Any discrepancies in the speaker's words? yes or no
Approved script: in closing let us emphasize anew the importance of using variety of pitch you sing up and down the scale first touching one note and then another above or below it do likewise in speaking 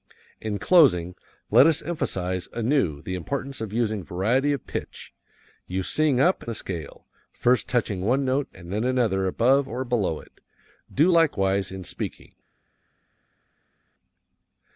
yes